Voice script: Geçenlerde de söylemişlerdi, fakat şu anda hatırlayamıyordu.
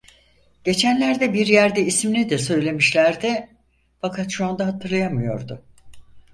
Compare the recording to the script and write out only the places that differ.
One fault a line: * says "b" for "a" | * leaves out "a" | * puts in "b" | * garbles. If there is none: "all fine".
* puts in "bir yerde ismini"